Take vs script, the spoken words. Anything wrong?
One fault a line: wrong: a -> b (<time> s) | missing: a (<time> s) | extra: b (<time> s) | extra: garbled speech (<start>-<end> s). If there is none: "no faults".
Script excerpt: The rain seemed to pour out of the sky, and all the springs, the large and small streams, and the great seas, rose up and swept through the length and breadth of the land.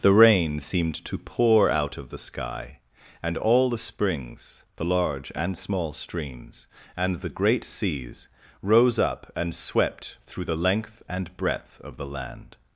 no faults